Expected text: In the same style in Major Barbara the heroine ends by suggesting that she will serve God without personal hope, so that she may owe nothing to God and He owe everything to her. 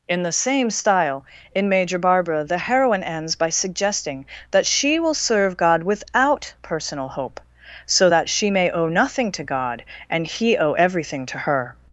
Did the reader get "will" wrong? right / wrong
right